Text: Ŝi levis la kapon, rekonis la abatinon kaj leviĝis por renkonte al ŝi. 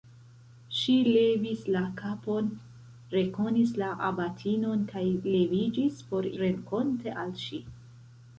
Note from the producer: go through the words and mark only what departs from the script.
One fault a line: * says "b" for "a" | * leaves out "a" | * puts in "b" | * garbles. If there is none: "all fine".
all fine